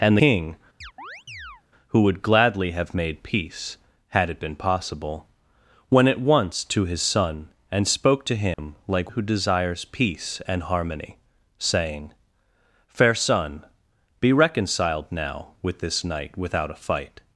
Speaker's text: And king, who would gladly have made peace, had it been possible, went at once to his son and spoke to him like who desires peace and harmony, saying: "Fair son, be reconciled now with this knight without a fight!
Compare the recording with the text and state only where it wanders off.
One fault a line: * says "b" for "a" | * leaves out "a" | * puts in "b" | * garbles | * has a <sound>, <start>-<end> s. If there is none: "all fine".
* has a chirp, 0.8-1.6 s
* has a dropout, 8.5-8.6 s